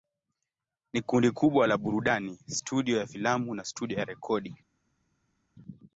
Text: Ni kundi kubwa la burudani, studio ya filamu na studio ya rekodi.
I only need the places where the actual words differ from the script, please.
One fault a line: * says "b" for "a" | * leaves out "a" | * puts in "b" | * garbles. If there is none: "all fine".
all fine